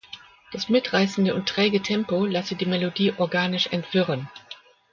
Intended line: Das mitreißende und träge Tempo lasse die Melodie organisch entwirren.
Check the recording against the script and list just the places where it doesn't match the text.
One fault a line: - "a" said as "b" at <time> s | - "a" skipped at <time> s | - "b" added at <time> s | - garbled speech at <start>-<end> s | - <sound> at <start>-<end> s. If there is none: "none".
none